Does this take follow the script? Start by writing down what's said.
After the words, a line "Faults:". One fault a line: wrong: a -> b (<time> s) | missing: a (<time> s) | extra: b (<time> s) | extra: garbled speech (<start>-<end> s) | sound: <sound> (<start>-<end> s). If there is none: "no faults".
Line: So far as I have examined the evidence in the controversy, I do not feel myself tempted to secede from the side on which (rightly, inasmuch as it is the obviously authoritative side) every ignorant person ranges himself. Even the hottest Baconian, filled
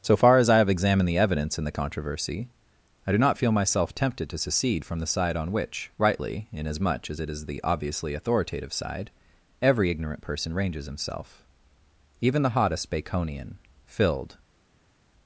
So far as I have examined the evidence in the controversy, I do not feel myself tempted to secede from the side on which (rightly, inasmuch as it is the obviously authoritative side) every ignorant person ranges himself. Even the hottest Baconian, filled
Faults:
no faults